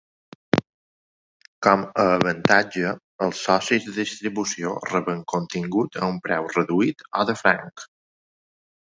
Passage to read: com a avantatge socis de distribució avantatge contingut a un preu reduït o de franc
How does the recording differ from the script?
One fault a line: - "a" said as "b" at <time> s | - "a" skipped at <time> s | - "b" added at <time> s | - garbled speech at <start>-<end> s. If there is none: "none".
- "els" added at 3.2 s
- "avantatge" said as "reben" at 4.9 s